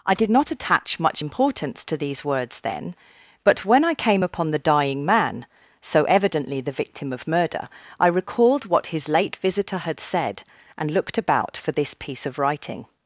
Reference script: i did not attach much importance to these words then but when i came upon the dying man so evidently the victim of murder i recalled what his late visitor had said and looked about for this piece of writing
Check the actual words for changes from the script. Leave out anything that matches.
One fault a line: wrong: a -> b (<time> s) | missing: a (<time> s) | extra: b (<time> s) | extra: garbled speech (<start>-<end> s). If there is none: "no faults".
no faults